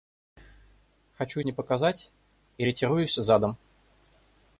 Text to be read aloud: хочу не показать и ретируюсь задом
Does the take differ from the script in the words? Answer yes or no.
no